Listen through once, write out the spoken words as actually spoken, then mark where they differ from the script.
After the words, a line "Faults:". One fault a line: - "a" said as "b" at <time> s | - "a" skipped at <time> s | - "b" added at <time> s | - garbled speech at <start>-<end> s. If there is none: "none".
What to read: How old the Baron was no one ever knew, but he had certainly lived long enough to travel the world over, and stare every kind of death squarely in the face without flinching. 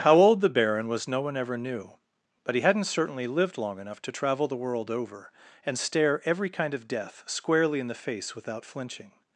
How old the Baron was no one ever knew, but he hadn't certainly lived long enough to travel the world over, and stare every kind of death squarely in the face without flinching.
Faults:
- "had" said as "hadn't" at 2.6 s